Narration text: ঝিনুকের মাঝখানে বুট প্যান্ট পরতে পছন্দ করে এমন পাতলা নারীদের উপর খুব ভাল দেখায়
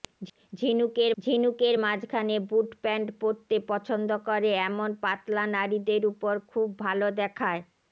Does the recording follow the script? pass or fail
fail